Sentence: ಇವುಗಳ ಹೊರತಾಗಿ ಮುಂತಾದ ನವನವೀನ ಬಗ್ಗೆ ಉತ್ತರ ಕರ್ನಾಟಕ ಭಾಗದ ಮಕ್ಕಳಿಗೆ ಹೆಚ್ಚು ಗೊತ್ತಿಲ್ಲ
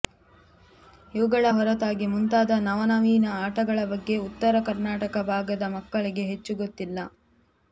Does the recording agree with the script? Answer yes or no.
no